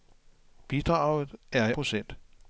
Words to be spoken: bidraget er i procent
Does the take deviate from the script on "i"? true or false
false